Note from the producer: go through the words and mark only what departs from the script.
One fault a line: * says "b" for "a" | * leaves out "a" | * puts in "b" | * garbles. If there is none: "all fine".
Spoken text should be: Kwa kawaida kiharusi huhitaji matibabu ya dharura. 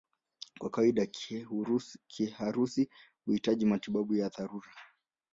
all fine